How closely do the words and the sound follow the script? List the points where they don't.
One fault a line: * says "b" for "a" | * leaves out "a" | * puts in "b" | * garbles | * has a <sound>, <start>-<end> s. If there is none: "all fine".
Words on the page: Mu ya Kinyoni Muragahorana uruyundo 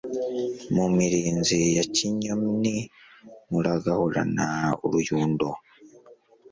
* puts in "mirinzi"